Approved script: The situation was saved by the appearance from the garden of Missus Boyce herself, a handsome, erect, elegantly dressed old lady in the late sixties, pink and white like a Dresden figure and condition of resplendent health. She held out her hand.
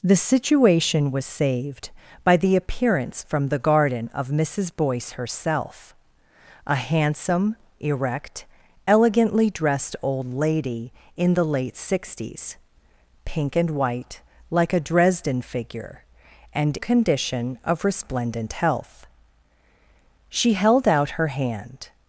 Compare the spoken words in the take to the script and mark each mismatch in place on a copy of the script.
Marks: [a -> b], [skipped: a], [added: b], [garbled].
The situation was saved by the appearance from the garden of Missus Boyce herself, a handsome, erect, elegantly dressed old lady in the late sixties, pink and white like a Dresden figure and condition of resplendent health. She held out her hand.